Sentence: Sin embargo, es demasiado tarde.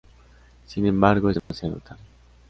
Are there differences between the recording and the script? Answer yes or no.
no